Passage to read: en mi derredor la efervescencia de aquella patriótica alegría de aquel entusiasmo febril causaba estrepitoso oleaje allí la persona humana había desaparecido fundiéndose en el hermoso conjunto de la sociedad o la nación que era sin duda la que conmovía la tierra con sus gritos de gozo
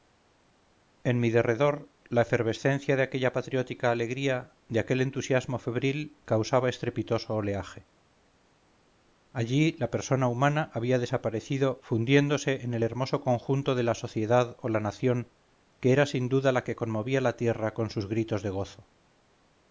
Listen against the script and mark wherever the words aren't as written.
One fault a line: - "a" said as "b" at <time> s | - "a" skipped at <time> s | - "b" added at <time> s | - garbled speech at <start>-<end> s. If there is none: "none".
none